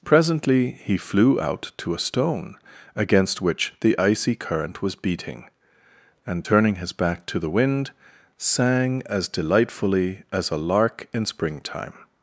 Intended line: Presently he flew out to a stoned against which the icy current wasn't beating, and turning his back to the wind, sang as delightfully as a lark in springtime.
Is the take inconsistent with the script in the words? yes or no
yes